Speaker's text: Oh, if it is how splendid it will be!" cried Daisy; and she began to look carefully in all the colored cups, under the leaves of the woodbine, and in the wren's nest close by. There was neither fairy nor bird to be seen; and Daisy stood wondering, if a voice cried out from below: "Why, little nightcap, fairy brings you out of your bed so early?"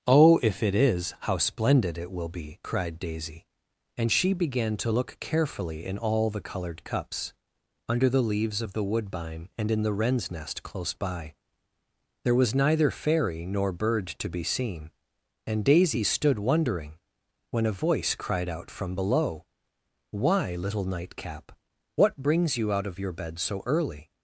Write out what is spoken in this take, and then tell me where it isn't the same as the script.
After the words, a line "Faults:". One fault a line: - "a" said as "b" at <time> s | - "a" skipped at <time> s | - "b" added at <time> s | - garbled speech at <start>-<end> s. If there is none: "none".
Oh, if it is how splendid it will be!" cried Daisy; and she began to look carefully in all the colored cups, under the leaves of the woodbine, and in the wren's nest close by. There was neither fairy nor bird to be seen; and Daisy stood wondering, when a voice cried out from below: "Why, little nightcap, what brings you out of your bed so early?"
Faults:
- "if" said as "when" at 17.5 s
- "fairy" said as "what" at 21.9 s